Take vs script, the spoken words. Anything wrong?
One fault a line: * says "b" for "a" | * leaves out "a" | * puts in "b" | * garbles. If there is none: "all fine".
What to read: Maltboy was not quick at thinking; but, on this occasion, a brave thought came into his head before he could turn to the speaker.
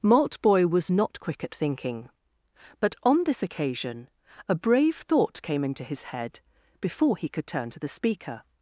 all fine